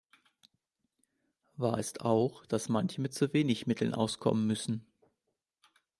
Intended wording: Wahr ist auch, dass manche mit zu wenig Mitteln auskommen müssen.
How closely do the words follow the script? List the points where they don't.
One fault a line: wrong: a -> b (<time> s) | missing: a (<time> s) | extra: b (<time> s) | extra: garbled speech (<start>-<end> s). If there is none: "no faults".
no faults